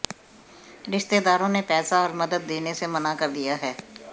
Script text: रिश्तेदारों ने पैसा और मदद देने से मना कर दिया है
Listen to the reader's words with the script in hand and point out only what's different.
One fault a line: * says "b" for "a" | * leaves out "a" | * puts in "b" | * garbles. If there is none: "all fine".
all fine